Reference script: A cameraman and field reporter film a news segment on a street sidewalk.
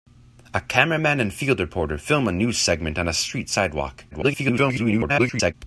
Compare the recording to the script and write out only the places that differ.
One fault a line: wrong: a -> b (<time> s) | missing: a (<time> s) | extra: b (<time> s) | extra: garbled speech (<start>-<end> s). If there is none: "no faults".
extra: garbled speech (4.1-5.5 s)